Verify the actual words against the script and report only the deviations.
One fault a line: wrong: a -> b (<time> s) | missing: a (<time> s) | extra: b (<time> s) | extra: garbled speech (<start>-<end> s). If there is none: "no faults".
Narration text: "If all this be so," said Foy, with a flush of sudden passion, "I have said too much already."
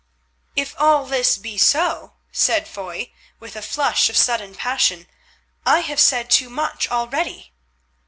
no faults